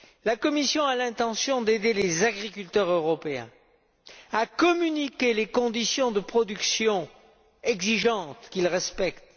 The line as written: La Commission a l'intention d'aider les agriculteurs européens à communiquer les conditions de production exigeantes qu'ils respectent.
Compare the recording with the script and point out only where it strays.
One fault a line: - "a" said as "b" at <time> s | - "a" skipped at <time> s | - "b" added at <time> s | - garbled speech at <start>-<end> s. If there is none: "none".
none